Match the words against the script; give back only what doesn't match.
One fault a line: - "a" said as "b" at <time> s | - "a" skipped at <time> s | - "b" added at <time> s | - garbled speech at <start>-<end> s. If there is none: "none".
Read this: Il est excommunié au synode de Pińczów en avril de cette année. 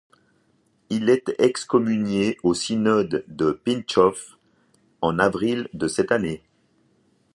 none